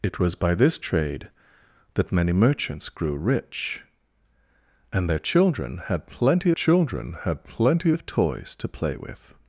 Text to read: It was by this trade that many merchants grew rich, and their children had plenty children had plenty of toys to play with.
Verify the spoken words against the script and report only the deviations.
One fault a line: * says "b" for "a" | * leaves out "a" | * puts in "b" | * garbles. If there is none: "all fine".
all fine